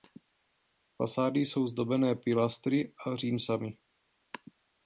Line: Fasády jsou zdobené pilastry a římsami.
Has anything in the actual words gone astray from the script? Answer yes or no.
no